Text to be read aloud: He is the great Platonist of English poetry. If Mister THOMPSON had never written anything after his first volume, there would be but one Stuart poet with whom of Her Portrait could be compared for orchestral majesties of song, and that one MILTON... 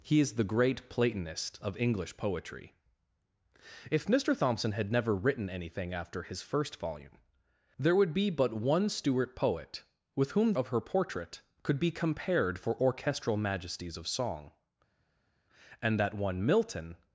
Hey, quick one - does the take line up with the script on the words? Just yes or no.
yes